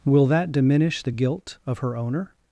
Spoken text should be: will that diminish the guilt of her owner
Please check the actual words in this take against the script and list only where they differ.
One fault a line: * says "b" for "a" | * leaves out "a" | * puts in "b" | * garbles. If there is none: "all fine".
all fine